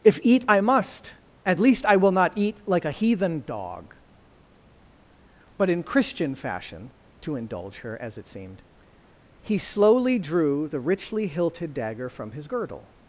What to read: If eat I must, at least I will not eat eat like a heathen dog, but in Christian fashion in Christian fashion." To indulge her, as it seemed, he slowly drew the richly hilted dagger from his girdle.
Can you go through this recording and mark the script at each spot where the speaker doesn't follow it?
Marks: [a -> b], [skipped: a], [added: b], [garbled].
If eat I must, at least I will not eat [skipped: eat] like a heathen dog, but in Christian fashion [skipped: in Christian fashion."] To indulge her, as it seemed, he slowly drew the richly hilted dagger from his girdle.